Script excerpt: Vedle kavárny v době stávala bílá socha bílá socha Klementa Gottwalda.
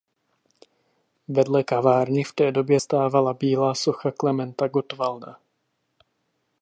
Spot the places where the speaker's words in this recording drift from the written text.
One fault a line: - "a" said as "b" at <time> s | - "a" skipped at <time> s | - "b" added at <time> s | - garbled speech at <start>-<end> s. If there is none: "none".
- "té" added at 2.3 s
- "bílá socha" skipped at 4.1 s